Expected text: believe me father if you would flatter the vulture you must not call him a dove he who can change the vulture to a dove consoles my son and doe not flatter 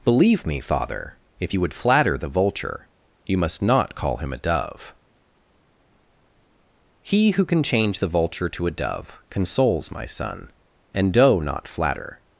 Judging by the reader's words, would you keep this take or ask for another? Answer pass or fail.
pass